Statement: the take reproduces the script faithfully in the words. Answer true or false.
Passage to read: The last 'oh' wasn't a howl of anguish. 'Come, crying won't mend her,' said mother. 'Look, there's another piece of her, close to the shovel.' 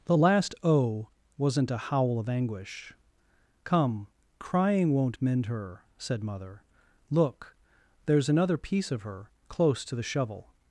true